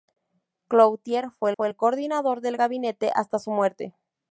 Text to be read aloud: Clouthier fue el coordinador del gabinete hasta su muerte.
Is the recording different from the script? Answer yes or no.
yes